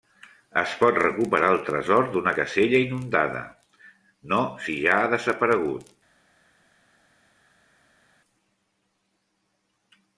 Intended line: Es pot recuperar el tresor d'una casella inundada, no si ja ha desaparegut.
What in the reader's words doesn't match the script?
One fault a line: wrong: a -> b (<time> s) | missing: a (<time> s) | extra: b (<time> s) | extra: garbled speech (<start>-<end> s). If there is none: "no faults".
no faults